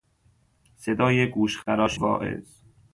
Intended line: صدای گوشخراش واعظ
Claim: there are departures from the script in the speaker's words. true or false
false